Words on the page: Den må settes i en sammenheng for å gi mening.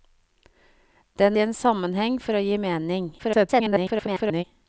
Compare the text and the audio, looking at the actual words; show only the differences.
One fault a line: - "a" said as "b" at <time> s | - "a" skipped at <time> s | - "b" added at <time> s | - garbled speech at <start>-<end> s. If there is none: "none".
- "må settes" skipped at 1.4 s
- garbled speech at 3.2-4.4 s